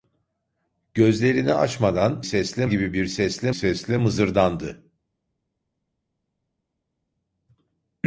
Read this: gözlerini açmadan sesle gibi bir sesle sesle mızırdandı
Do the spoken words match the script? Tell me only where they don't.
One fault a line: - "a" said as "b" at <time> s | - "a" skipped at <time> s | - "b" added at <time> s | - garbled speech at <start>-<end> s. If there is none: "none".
none